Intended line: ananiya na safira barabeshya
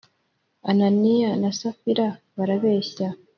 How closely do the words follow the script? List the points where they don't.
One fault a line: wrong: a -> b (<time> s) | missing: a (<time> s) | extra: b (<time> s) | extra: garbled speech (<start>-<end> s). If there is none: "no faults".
no faults